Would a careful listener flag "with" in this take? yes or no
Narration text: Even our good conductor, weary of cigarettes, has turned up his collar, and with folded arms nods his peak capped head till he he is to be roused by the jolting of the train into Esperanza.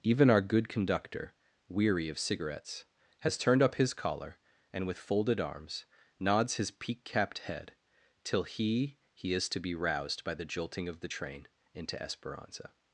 no